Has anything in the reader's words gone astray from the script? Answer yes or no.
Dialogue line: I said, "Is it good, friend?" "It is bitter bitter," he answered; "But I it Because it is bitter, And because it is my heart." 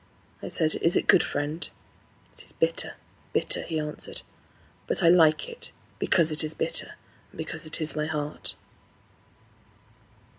yes